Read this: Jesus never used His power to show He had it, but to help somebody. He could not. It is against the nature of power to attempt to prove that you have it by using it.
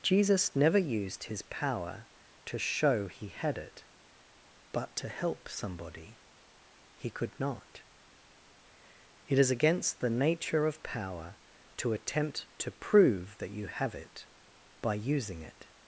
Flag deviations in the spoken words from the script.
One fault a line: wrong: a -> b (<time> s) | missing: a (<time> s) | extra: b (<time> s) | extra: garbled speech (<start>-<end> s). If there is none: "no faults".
no faults